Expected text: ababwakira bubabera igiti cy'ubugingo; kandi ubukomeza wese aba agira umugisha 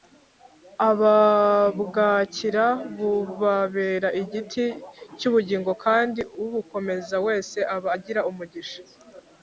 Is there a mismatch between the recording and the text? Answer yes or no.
no